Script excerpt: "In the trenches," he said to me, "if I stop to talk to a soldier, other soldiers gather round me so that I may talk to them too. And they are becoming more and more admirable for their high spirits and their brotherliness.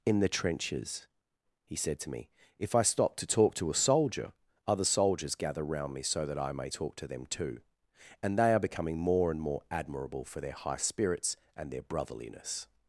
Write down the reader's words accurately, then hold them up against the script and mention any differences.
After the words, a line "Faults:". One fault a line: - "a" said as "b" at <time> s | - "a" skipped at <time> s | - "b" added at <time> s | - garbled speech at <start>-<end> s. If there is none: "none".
"In the trenches," he said to me, "if I stop to talk to a soldier, other soldiers gather round me so that I may talk to them too. And they are becoming more and more admirable for their high spirits and their brotherliness.
Faults:
none